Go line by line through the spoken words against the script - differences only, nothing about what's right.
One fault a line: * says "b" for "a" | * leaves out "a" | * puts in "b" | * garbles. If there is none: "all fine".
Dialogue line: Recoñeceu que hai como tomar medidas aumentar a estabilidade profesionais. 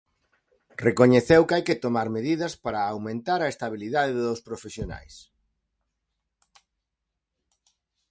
* says "que" for "como"
* puts in "para"
* puts in "dos"